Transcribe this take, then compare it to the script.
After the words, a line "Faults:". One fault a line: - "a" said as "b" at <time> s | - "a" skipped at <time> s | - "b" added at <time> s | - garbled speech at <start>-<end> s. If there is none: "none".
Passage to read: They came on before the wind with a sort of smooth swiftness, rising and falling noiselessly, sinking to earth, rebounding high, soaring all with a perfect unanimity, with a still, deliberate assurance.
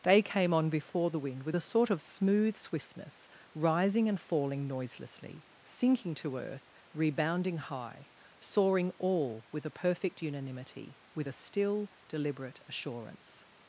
They came on before the wind with a sort of smooth swiftness, rising and falling noiselessly, sinking to earth, rebounding high, soaring all with a perfect unanimity, with a still, deliberate assurance.
Faults:
none